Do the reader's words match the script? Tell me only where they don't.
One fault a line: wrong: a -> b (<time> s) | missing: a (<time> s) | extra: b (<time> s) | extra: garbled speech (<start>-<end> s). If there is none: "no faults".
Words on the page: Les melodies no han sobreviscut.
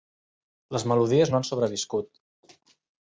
no faults